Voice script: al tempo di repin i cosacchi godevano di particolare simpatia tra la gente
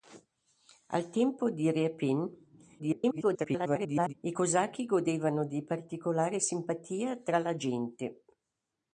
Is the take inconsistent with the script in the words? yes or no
yes